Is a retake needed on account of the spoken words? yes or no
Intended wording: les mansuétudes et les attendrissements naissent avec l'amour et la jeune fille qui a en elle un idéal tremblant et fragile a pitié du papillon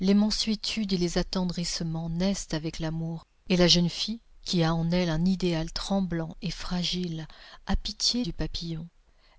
no